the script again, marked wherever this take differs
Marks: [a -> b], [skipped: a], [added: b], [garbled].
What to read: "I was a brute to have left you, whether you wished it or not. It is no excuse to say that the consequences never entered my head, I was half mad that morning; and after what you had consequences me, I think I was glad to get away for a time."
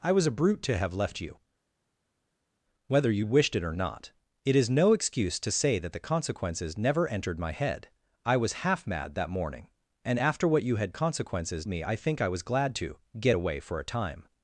"I was a brute to have left you, whether you wished it or not. It is no excuse to say that the consequences never entered my head, I was half mad that morning; and after what you had consequences me, I think I was glad to get away for a time."